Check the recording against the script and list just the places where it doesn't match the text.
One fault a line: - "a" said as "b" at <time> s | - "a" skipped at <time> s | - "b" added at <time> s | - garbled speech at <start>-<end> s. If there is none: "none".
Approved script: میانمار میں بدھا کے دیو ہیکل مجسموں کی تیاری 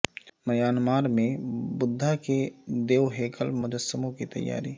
none